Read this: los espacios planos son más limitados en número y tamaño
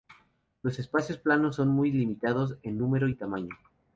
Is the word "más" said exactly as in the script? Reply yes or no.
no